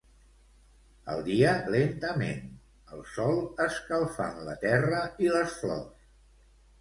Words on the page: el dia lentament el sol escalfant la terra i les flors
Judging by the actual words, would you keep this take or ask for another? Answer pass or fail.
pass